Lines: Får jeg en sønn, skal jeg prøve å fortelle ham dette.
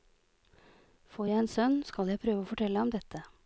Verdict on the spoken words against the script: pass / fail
pass